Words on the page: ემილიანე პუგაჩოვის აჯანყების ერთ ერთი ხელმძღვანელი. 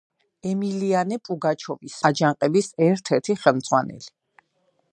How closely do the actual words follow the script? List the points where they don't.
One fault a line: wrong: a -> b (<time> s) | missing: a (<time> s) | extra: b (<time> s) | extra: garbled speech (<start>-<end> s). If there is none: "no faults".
no faults